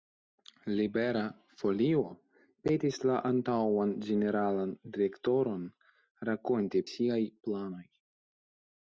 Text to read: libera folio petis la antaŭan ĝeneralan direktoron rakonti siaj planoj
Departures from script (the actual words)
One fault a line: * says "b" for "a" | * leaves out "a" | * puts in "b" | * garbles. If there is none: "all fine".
all fine